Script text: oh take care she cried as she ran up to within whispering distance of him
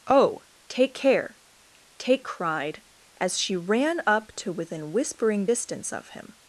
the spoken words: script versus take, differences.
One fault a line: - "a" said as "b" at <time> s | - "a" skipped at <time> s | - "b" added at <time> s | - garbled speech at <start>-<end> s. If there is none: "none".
- "she" said as "take" at 2.0 s